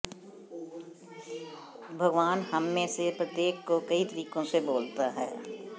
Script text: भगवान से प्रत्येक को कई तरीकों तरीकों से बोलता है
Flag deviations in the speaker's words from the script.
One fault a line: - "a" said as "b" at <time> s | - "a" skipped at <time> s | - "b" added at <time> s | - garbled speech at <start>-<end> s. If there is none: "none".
- "हममें" added at 2.5 s
- "तरीकों" skipped at 4.4 s